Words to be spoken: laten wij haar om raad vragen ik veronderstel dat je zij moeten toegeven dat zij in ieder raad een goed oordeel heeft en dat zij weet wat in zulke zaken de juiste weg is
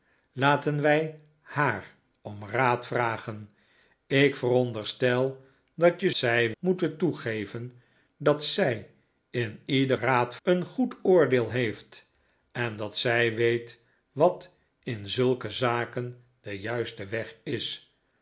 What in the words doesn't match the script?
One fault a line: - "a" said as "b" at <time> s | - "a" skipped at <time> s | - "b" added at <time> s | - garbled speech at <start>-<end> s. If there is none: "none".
none